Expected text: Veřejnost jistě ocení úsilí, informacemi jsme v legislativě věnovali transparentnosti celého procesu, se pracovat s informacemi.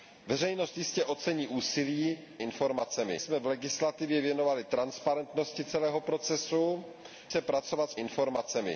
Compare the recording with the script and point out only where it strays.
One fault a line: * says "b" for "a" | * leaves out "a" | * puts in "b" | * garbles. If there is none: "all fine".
all fine